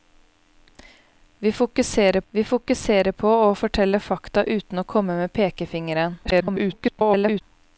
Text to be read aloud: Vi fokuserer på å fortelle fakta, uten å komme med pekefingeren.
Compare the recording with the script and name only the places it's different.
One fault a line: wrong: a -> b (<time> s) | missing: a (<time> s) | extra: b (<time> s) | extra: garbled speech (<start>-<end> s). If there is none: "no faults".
extra: vi fokuserer (2.3 s)
extra: garbled speech (6.2-7.4 s)